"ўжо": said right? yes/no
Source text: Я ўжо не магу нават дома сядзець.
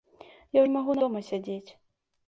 no